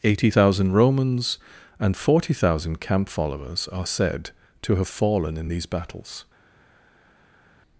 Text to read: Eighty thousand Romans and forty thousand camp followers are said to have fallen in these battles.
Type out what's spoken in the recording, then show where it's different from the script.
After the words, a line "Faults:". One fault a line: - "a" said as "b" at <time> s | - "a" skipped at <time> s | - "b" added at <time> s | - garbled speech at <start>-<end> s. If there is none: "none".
Eighty thousand Romans and forty thousand camp followers are said to have fallen in these battles.
Faults:
none